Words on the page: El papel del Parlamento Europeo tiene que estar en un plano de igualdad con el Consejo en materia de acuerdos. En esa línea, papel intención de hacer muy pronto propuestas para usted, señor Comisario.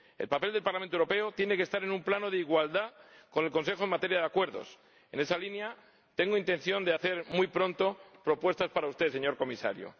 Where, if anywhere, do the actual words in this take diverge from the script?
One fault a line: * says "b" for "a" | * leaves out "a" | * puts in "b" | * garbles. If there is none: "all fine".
* says "tengo" for "papel"